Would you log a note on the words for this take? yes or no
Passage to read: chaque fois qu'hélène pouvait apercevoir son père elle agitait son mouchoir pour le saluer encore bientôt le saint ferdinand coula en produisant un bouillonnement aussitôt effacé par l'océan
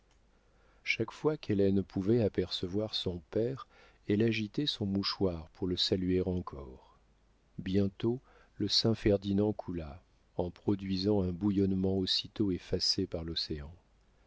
no